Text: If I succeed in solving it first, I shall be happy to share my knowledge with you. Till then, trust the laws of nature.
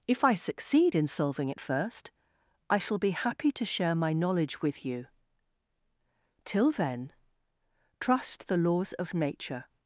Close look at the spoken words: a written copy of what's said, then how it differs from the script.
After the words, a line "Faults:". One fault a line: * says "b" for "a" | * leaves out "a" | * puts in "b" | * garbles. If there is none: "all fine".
If I succeed in solving it first, I shall be happy to share my knowledge with you. Till then, trust the laws of nature.
Faults:
all fine